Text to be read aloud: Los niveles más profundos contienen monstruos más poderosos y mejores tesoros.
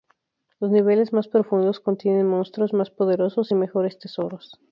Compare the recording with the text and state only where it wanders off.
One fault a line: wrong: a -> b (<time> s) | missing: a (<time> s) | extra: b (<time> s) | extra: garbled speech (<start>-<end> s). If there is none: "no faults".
no faults